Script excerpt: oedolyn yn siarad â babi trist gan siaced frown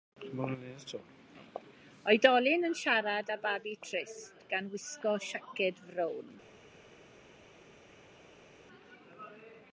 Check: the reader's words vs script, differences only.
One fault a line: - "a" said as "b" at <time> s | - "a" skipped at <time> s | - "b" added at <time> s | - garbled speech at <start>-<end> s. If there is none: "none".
- "wisgo" added at 4.8 s